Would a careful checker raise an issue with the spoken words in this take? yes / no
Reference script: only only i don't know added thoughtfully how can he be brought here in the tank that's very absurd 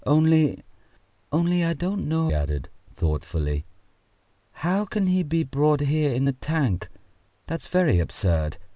no